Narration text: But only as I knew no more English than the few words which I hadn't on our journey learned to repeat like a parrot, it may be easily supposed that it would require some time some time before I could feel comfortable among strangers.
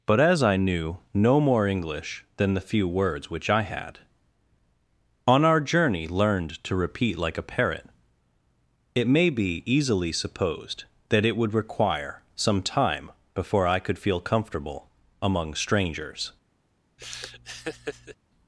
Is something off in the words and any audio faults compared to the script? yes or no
yes